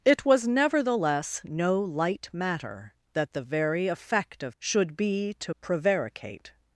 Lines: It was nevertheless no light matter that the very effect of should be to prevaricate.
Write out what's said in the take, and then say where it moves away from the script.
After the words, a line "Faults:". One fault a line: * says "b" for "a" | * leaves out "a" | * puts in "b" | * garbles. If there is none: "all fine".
It was nevertheless no light matter that the very effect of should be to prevaricate.
Faults:
all fine